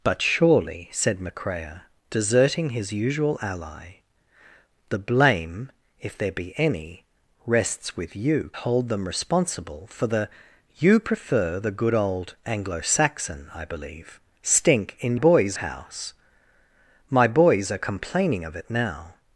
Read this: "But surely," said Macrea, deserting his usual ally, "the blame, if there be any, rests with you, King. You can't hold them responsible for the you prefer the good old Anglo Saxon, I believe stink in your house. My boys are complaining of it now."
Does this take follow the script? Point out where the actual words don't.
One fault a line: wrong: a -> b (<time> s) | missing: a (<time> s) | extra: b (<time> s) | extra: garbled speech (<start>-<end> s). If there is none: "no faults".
missing: King You can't (8.5 s)
wrong: your -> boys (15.1 s)